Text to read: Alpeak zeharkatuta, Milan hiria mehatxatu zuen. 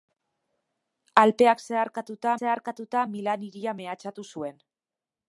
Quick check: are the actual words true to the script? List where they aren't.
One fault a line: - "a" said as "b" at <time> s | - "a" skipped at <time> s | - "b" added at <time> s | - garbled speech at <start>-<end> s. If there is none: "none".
- "zeharkatuta" added at 2.4 s